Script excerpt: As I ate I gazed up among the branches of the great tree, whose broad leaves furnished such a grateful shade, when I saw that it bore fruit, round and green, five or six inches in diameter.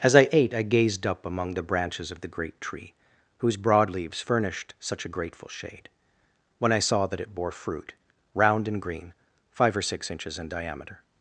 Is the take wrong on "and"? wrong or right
right